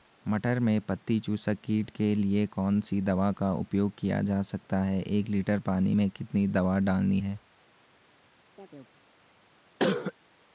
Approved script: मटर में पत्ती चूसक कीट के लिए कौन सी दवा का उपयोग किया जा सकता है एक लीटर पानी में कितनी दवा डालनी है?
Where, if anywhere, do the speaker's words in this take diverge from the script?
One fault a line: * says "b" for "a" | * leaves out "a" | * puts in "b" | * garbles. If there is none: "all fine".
all fine